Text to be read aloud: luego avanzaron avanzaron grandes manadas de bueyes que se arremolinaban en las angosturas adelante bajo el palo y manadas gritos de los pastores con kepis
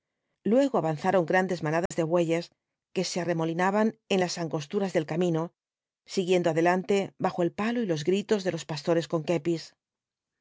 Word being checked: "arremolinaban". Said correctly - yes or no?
yes